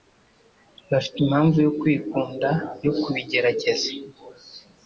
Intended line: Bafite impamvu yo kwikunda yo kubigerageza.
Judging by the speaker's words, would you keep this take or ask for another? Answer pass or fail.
pass